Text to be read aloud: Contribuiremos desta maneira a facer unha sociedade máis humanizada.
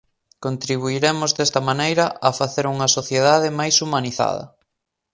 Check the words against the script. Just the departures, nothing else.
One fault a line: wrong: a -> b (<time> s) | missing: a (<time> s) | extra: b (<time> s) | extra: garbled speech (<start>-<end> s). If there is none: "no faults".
no faults